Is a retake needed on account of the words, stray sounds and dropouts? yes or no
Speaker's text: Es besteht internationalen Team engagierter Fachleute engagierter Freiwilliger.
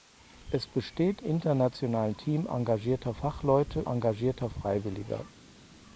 no